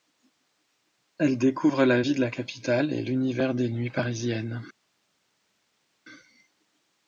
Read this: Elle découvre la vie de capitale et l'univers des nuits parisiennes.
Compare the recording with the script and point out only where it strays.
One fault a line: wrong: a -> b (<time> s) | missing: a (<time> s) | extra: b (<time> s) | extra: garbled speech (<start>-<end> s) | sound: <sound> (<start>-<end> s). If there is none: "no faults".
extra: la (2.2 s)